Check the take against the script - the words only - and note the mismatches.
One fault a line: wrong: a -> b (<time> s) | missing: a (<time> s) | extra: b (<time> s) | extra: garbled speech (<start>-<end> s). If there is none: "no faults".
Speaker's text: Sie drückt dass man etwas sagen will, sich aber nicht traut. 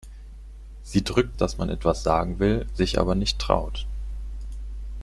no faults